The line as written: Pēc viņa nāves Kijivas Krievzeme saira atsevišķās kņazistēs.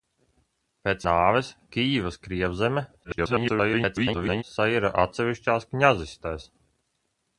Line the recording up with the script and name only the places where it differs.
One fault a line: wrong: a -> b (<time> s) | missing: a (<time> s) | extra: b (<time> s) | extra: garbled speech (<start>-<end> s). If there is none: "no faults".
missing: viņa (1.0 s)
extra: garbled speech (3.0-4.4 s)